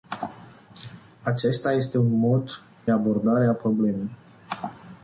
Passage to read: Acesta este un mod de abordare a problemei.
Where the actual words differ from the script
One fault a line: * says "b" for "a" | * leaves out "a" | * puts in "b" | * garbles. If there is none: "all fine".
* leaves out "de"